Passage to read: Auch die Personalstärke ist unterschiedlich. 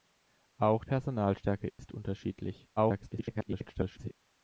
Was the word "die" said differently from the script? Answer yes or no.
yes